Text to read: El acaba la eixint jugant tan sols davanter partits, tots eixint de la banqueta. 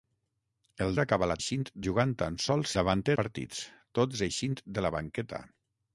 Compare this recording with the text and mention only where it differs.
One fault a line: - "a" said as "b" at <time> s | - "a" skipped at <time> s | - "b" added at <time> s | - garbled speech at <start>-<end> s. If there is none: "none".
none